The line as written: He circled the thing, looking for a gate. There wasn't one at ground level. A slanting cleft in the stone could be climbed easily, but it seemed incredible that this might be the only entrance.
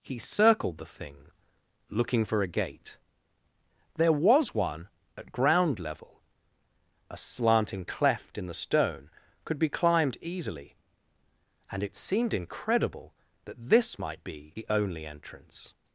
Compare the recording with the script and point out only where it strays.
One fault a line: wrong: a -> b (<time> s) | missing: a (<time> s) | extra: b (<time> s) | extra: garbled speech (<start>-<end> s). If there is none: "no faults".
wrong: wasn't -> was (4.1 s)
wrong: but -> and (11.7 s)